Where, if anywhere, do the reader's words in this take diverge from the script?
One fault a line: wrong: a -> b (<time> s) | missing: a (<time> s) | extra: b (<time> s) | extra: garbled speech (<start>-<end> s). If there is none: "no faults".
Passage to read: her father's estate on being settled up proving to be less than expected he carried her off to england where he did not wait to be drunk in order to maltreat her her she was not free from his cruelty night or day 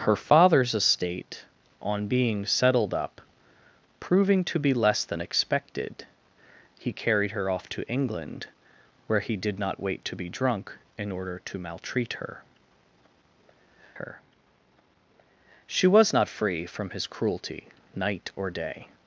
no faults